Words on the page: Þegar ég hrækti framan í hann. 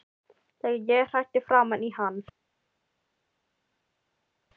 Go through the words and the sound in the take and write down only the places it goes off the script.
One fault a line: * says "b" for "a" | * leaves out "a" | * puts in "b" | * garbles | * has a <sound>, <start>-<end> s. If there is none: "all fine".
all fine